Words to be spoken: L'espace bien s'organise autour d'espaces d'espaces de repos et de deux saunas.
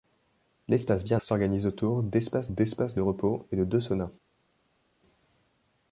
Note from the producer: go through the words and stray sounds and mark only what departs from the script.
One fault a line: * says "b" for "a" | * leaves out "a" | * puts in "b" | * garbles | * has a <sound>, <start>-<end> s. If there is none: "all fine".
all fine